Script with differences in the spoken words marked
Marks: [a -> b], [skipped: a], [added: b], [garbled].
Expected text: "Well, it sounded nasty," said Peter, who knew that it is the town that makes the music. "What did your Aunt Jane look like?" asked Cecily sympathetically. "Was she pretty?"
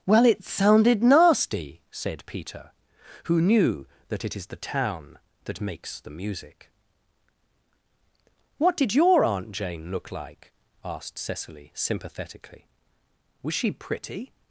"Well, it sounded nasty," said Peter, who knew that it is the town that makes the music. "What did your Aunt Jane look like?" asked Cecily sympathetically. "Was she pretty?"